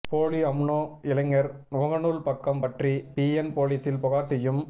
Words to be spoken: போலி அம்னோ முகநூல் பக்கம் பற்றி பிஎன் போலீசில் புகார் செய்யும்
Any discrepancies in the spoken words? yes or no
yes